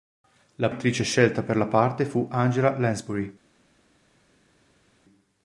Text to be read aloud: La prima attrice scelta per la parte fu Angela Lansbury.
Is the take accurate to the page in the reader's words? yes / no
no